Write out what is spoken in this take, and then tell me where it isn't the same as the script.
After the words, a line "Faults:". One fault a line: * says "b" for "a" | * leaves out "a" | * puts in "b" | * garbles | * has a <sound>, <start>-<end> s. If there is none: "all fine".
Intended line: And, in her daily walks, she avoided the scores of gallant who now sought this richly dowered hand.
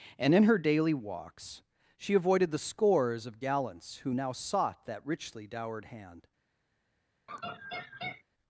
And, in her daily walks, she avoided the scores of gallants who now sought that richly dowered hand.
Faults:
* says "gallants" for "gallant"
* says "that" for "this"
* has a laugh, 7.3-8.2 s